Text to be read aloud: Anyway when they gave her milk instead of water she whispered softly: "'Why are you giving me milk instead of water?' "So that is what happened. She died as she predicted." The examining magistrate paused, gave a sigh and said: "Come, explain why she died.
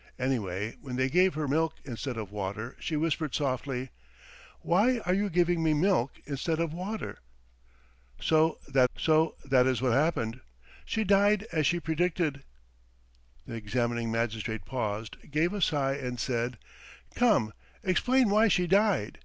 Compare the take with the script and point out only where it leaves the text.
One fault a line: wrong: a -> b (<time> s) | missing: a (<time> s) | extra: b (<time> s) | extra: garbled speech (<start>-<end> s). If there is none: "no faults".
extra: so that (8.9 s)